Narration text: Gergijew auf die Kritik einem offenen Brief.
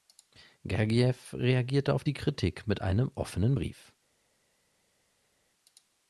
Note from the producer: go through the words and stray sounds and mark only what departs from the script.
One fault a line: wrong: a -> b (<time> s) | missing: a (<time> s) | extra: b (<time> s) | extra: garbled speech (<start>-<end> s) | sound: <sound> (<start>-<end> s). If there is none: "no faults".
extra: reagierte (1.3 s)
extra: mit (2.7 s)